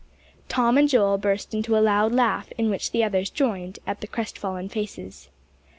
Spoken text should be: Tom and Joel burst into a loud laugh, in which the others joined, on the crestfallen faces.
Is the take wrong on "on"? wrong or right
wrong